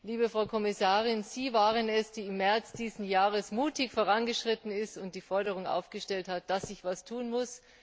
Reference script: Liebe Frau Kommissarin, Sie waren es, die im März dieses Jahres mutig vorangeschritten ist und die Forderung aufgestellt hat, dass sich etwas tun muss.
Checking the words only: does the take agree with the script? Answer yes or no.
yes